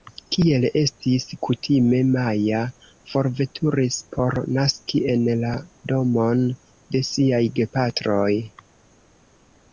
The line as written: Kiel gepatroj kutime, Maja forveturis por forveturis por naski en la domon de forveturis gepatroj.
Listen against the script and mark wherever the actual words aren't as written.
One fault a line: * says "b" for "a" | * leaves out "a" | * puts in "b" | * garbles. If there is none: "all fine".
* says "estis" for "gepatroj"
* leaves out "forveturis por"
* says "siaj" for "forveturis"